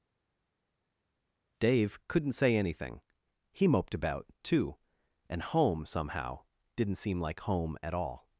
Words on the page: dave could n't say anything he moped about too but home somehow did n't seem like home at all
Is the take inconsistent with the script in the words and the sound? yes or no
yes